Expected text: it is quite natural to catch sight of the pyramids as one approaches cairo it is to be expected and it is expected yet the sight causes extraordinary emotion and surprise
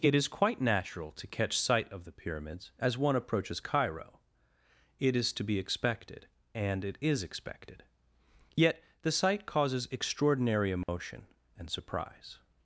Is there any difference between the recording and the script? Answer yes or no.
no